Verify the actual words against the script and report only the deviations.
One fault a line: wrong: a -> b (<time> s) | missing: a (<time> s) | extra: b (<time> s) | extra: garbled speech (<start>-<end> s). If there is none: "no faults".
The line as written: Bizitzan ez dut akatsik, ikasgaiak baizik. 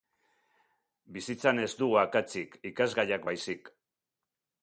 wrong: dut -> dugu (1.8 s)